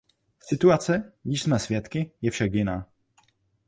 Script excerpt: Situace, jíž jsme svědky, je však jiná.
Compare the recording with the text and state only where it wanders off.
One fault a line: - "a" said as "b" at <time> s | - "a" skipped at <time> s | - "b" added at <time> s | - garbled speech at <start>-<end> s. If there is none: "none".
none